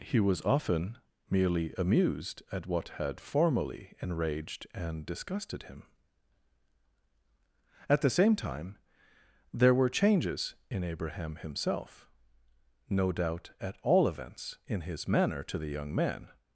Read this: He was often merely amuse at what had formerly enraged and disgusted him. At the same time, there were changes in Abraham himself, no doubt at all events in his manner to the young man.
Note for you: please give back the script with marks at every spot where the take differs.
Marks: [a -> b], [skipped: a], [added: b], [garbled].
He was often merely [amuse -> amused] at what had formerly enraged and disgusted him. At the same time, there were changes in Abraham himself, no doubt at all events in his manner to the young man.